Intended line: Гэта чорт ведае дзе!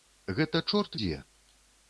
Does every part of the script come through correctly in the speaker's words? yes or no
no